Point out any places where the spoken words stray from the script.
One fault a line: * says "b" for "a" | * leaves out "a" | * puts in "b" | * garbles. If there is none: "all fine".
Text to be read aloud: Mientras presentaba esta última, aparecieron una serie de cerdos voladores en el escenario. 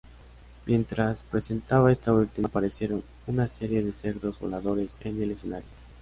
all fine